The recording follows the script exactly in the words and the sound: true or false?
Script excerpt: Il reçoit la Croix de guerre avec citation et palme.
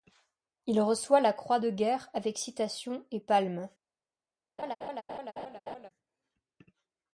false